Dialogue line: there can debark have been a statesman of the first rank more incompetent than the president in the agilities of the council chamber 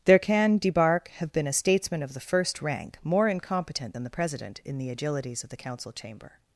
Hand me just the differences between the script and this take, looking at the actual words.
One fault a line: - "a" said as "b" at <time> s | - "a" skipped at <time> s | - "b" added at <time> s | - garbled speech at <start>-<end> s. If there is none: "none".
none